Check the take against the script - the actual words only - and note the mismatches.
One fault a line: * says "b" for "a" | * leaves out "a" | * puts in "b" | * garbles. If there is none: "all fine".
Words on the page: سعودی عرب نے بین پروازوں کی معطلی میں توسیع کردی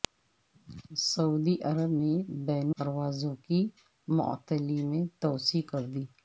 all fine